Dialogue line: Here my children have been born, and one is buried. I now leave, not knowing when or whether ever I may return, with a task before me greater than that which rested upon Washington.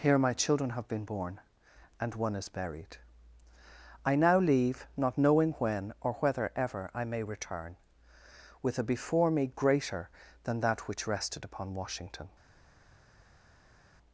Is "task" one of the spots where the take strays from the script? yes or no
yes